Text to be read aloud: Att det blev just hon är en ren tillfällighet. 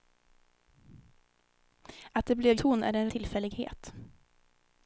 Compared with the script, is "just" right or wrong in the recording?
wrong